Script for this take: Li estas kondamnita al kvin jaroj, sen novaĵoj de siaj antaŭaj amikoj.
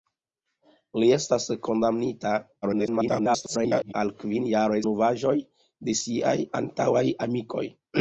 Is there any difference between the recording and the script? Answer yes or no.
yes